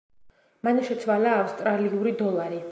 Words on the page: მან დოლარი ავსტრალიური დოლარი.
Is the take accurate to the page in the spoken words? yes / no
no